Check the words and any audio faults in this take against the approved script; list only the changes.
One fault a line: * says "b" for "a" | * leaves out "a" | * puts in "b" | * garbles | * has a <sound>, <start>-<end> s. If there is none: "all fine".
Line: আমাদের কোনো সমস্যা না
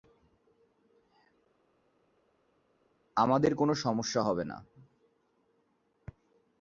* puts in "হবে"